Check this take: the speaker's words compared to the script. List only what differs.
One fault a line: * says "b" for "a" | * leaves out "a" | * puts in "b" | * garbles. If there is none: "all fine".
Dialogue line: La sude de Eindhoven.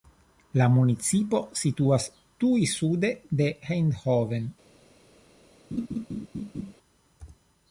* puts in "municipo situas tuj"